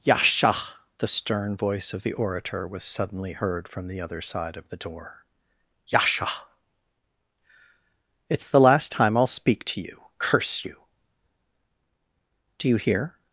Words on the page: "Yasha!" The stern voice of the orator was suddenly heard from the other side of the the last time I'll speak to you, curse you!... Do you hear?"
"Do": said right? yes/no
yes